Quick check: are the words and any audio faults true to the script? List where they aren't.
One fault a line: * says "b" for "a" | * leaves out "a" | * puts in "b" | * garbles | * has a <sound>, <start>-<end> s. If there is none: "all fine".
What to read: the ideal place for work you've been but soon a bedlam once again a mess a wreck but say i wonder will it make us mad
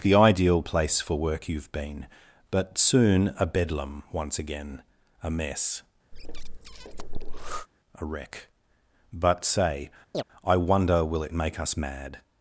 * has a breath, 6.1-7.7 s
* has a chirp, 10.1-10.2 s